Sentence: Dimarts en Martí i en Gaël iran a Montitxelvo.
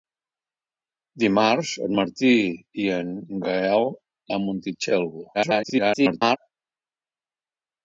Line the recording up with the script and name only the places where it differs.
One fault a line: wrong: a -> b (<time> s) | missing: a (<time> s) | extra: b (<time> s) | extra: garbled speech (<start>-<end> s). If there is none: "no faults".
missing: iran (3.9 s)
extra: garbled speech (5.3-6.4 s)